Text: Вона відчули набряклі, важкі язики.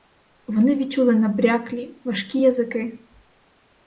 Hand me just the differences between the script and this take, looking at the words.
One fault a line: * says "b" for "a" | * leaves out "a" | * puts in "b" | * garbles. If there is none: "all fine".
* says "Вони" for "Вона"